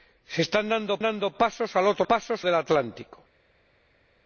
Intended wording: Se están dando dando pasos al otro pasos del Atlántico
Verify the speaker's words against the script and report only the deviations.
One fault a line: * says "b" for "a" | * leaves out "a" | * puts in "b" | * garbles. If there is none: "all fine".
all fine